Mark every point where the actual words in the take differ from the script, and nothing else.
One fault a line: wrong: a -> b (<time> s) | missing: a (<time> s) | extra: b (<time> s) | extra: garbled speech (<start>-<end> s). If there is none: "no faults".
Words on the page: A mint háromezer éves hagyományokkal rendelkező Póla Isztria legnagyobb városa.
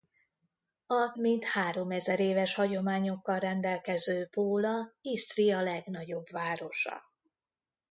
no faults